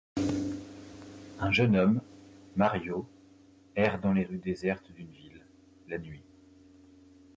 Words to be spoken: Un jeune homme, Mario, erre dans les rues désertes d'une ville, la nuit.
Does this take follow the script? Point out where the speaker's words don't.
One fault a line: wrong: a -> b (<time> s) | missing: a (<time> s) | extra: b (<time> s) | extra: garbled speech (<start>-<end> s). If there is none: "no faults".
no faults